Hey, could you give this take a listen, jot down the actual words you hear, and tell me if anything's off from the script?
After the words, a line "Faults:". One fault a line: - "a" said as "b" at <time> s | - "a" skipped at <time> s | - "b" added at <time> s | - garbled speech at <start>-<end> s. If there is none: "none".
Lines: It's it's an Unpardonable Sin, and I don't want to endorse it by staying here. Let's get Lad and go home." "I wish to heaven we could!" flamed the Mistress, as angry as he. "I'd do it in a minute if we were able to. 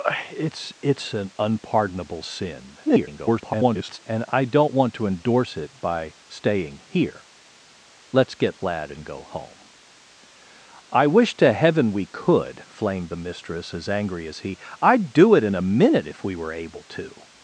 It's it's an Unpardonable Sin, [garbled] and I don't want to endorse it by staying here. Let's get Lad and go home." "I wish to heaven we could!" flamed the Mistress, as angry as he. "I'd do it in a minute if we were able to.
Faults:
- garbled speech at 2.9-4.0 s